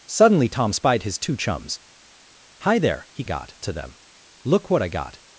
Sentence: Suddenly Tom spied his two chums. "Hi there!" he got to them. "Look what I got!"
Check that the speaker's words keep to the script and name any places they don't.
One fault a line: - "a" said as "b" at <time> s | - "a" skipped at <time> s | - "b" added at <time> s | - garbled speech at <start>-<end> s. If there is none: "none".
none